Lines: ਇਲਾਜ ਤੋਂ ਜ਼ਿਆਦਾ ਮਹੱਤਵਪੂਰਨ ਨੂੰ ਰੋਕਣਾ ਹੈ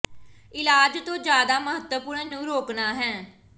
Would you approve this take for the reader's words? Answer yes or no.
yes